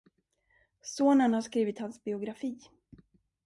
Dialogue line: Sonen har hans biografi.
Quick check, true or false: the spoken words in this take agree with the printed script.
false